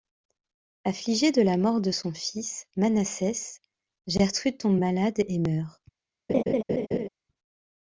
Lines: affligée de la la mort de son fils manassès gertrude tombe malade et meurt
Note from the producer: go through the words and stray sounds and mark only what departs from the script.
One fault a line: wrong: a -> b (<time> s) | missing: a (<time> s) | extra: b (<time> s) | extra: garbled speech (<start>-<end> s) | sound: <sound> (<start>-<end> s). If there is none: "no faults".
missing: la (1.6 s)
sound: laugh (6.3-7.1 s)